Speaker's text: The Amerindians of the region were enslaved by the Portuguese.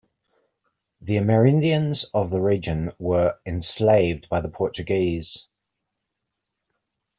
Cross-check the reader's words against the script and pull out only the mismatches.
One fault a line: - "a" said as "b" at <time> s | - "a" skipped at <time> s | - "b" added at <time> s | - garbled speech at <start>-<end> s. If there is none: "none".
none